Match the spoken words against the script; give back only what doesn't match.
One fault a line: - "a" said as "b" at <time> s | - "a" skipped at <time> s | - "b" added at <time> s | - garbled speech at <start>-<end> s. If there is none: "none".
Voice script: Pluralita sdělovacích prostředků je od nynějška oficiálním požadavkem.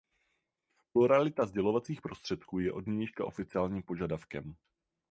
none